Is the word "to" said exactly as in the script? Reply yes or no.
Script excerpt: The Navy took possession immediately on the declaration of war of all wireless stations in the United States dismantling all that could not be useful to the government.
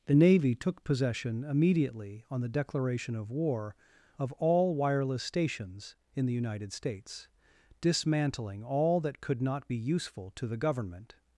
yes